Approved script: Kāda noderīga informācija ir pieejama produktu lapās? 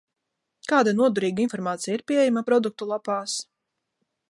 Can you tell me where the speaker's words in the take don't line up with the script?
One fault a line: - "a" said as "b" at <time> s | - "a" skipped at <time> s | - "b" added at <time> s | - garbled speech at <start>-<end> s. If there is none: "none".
none